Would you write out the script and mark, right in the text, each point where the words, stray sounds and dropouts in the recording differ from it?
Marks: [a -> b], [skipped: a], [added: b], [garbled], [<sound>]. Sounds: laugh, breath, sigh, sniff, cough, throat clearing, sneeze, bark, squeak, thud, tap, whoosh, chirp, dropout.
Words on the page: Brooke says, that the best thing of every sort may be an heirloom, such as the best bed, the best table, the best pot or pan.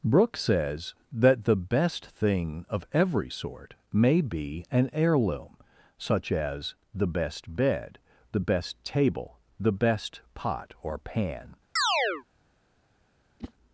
Brooke says, that the best thing of every sort may be an heirloom, such as the best bed, the best table, the best pot or pan. [chirp] [whoosh]